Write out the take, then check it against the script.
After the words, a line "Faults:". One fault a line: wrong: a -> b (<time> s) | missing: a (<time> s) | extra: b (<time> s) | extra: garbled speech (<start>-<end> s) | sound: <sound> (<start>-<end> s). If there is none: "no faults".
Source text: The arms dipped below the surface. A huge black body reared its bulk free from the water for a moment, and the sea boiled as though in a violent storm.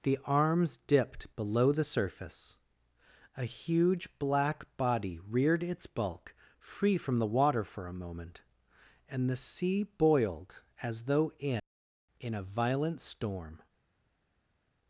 The arms dipped below the surface. A huge black body reared its bulk free from the water for a moment, and the sea boiled as though in in a violent storm.
Faults:
extra: in (12.2 s)